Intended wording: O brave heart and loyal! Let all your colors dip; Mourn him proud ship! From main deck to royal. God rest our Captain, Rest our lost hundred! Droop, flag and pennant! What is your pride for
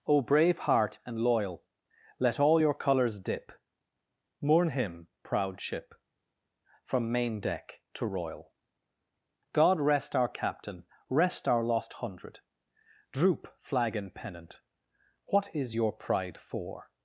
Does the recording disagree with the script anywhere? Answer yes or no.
no